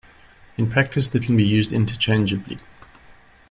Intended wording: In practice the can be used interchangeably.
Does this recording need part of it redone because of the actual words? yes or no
no